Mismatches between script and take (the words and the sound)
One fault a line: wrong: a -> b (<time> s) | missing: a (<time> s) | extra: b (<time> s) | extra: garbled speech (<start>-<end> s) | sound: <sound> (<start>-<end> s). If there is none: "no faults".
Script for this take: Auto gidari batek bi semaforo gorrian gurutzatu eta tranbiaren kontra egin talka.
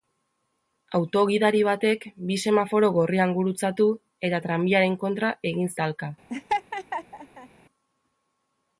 sound: laugh (6.3-7.5 s)